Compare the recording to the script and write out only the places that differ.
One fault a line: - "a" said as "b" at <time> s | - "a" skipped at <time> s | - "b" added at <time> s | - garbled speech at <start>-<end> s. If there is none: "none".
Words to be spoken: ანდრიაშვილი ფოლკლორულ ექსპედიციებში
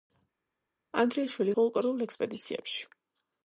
none